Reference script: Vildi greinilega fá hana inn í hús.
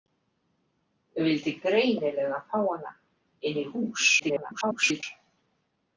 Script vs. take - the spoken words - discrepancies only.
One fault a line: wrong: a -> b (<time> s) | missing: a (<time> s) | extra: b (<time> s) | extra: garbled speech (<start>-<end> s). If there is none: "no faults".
extra: garbled speech (4.2-5.0 s)